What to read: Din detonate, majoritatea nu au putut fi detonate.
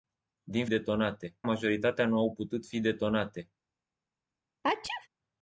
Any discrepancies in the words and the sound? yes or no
yes